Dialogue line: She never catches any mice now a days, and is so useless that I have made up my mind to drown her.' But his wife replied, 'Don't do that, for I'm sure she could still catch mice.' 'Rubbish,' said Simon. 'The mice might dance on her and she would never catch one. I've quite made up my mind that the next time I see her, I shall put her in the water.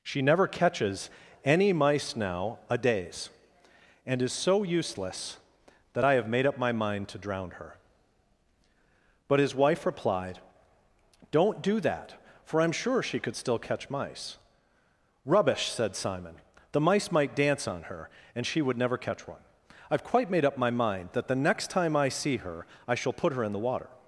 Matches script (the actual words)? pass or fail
pass